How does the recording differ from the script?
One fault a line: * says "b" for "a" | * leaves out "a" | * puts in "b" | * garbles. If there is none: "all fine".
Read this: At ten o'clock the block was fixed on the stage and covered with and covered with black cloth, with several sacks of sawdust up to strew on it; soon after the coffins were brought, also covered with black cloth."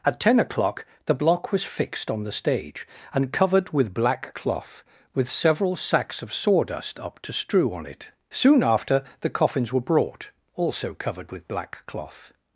* leaves out "and covered with"